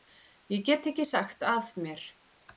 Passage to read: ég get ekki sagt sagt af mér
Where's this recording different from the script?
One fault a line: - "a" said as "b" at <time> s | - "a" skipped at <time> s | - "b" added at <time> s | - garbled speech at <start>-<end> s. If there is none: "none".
- "sagt" skipped at 1.4 s